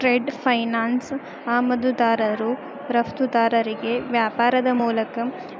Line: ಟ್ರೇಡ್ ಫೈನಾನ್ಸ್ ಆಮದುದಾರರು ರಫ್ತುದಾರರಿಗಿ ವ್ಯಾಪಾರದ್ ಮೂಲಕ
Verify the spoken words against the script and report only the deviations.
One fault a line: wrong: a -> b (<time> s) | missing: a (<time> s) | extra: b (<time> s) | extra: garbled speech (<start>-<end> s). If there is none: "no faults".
no faults